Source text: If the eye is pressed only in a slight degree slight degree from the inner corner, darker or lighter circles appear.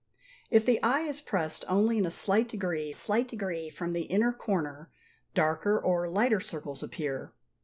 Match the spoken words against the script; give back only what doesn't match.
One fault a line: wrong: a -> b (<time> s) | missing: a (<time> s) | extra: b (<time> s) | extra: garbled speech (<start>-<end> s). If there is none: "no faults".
no faults